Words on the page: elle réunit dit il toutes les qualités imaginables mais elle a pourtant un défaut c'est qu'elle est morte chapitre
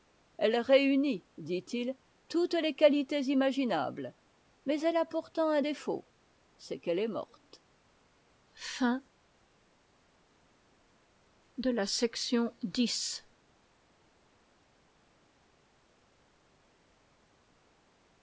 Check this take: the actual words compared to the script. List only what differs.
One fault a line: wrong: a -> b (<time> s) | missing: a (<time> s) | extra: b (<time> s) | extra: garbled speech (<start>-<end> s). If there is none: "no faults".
no faults